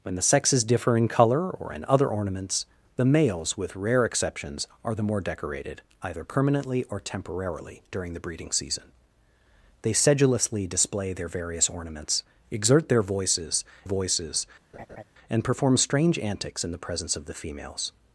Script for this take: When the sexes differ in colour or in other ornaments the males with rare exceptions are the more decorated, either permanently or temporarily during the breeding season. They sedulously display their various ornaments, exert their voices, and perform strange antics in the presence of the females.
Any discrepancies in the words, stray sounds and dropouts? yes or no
yes